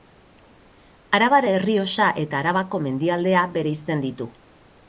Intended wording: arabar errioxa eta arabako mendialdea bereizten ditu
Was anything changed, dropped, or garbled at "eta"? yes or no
no